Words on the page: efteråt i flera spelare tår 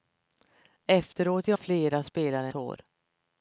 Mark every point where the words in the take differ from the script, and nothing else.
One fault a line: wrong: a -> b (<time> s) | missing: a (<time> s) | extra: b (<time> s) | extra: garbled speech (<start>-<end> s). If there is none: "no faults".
no faults